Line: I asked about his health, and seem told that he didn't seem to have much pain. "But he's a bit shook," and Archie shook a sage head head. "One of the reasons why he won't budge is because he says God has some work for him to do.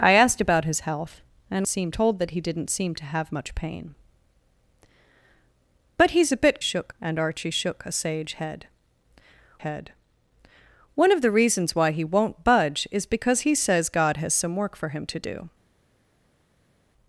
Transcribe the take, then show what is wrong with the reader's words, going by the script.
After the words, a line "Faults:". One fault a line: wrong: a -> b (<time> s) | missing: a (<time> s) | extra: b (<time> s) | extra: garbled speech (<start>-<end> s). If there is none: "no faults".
I asked about his health, and seem told that he didn't seem to have much pain. "But he's a bit shook," and Archie shook a sage head head. "One of the reasons why he won't budge is because he says God has some work for him to do.
Faults:
no faults